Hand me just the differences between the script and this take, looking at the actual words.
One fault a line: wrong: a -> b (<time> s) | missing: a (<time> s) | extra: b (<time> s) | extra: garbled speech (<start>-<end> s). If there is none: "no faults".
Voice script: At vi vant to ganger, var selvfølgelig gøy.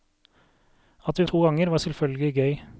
missing: vant (1.3 s)